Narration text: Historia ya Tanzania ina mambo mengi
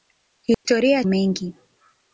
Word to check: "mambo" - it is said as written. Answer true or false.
false